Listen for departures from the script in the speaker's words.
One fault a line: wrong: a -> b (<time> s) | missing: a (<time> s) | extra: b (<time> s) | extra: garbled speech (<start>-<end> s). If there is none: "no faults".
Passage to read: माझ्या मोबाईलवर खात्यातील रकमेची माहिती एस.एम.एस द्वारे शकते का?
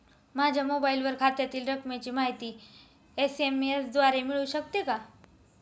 extra: मिळू (4.2 s)